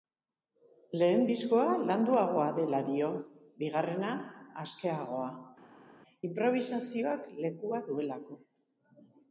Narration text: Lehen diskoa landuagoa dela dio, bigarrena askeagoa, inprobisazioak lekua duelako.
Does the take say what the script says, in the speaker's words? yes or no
yes